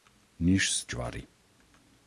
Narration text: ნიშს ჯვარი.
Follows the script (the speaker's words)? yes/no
yes